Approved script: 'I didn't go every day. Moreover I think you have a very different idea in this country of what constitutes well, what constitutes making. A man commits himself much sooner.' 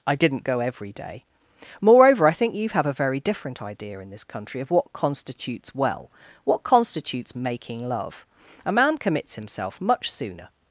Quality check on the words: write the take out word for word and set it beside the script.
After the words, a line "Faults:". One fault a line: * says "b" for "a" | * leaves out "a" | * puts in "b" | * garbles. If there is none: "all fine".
'I didn't go every day. Moreover I think you have a very different idea in this country of what constitutes well, what constitutes making love. A man commits himself much sooner.'
Faults:
* puts in "love"